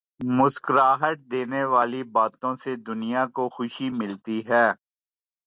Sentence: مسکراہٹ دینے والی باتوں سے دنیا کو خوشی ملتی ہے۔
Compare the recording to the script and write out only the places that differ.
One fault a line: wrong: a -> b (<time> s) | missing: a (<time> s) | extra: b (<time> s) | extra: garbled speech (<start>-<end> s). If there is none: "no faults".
no faults